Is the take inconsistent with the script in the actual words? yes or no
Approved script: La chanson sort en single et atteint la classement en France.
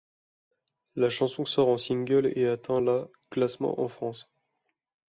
no